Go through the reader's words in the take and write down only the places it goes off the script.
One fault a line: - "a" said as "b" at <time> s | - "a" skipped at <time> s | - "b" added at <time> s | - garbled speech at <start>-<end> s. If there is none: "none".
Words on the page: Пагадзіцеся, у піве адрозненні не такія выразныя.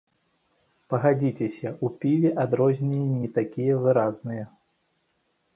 none